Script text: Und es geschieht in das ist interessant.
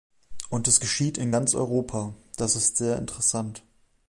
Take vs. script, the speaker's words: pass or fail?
fail